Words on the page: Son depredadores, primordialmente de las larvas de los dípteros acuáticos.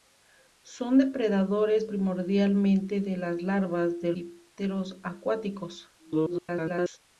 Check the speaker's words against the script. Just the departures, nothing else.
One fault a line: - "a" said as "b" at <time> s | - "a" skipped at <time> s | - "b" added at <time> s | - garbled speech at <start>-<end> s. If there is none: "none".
- "los" skipped at 4.1 s
- garbled speech at 6.0-7.0 s